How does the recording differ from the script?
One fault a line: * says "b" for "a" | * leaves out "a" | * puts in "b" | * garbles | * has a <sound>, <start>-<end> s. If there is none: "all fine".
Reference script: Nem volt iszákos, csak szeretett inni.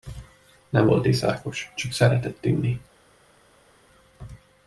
all fine